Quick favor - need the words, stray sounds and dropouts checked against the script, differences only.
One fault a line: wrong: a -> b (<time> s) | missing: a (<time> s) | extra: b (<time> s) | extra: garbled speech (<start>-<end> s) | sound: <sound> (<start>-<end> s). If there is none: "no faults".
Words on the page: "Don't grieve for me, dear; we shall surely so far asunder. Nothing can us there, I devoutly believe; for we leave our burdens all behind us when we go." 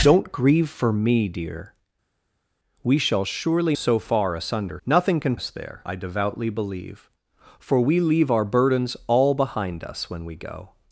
no faults